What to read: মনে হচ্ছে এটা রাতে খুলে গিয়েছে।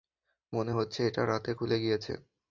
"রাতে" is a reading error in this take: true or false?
false